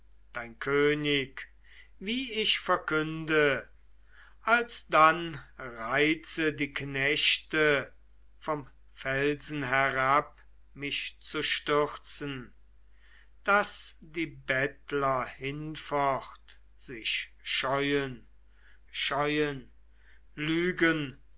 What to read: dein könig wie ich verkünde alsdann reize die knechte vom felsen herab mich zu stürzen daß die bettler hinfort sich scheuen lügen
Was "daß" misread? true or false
false